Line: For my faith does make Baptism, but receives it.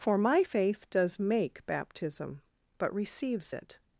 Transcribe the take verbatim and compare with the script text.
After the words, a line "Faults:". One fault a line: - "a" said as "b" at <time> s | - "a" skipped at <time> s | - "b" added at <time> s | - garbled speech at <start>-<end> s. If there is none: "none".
For my faith does make Baptism, but receives it.
Faults:
none